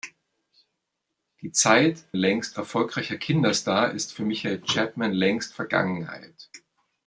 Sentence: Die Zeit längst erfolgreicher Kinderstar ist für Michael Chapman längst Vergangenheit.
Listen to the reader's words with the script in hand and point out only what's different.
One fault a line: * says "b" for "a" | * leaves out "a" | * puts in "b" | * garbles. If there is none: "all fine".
all fine